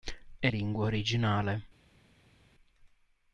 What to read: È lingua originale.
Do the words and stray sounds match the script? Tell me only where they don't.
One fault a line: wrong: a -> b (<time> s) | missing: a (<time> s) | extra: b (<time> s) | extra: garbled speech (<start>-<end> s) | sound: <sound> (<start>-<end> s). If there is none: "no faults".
no faults